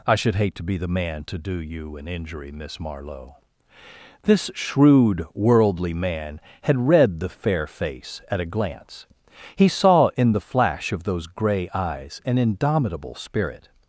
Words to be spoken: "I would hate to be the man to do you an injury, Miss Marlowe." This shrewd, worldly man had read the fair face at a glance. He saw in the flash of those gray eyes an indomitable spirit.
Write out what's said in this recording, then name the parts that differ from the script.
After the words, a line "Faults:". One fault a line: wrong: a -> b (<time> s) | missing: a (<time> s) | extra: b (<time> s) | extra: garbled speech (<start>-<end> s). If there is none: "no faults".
"I should hate to be the man to do you an injury, Miss Marlowe." This shrewd, worldly man had read the fair face at a glance. He saw in the flash of those gray eyes an indomitable spirit.
Faults:
wrong: would -> should (0.1 s)